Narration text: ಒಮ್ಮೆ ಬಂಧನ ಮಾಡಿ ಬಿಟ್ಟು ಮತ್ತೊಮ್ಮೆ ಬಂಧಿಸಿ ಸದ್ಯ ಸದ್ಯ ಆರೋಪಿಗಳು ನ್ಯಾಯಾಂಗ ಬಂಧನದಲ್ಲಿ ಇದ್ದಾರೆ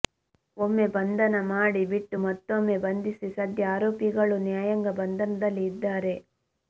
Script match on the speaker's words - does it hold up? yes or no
no